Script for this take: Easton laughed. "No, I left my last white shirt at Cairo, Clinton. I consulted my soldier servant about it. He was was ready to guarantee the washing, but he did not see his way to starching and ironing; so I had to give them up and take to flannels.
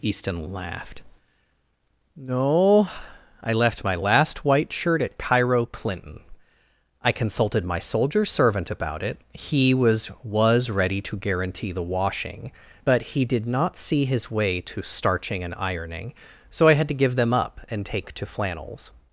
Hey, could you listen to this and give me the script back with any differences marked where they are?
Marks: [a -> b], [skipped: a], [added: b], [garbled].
Easton laughed. "No, I left my last white shirt at Cairo, Clinton. I consulted my soldier servant about it. He was was ready to guarantee the washing, but he did not see his way to starching and ironing; so I had to give them up and take to flannels.